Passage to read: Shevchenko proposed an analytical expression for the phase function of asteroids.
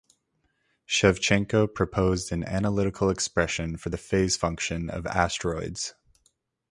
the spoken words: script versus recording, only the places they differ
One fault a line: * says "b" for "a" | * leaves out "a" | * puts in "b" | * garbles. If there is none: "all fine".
all fine